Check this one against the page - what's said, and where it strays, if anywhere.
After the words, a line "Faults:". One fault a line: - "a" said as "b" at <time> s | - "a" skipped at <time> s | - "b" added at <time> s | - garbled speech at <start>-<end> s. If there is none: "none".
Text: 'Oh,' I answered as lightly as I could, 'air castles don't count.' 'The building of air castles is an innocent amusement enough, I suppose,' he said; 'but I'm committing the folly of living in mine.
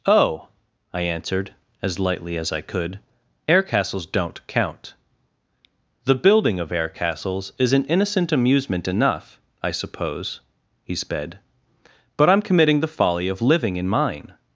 'Oh,' I answered as lightly as I could, 'air castles don't count.' 'The building of air castles is an innocent amusement enough, I suppose,' he sped; 'but I'm committing the folly of living in mine.
Faults:
- "said" said as "sped" at 10.9 s